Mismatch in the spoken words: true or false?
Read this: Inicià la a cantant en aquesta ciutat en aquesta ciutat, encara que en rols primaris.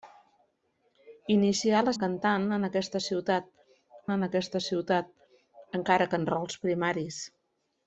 false